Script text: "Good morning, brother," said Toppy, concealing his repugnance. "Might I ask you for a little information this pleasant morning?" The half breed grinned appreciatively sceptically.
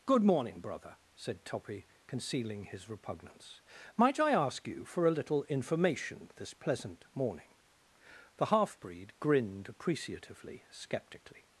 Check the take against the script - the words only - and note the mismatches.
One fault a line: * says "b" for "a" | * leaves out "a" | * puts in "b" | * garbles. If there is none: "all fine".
all fine